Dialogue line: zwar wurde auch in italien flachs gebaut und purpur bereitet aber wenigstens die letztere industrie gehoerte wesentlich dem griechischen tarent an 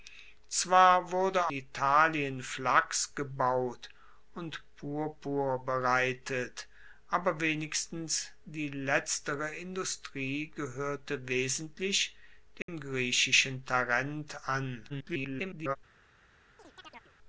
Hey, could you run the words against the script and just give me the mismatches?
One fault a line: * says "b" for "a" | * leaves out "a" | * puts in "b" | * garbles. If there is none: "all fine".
* leaves out "auch in"
* garbles